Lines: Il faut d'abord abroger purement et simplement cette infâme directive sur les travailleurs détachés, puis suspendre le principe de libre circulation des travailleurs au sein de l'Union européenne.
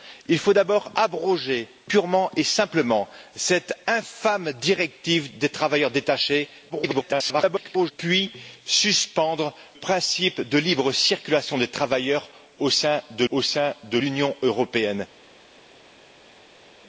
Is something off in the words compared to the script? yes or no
yes